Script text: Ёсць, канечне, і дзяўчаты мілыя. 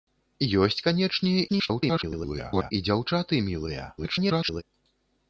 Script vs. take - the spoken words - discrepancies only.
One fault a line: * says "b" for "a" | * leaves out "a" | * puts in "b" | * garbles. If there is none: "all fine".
* garbles
* garbles